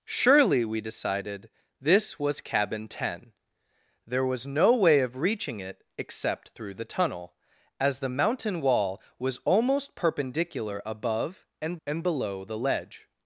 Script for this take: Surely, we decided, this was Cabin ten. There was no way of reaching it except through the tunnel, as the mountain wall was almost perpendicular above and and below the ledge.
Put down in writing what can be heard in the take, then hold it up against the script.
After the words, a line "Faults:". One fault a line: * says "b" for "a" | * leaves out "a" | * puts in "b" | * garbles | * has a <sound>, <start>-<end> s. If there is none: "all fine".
Surely, we decided, this was Cabin ten. There was no way of reaching it except through the tunnel, as the mountain wall was almost perpendicular above and and below the ledge.
Faults:
all fine